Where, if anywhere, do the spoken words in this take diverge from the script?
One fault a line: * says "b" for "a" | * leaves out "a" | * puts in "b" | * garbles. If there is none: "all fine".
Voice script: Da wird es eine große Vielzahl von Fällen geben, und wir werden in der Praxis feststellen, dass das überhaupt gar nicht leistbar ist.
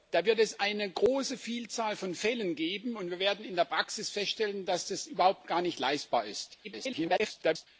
* garbles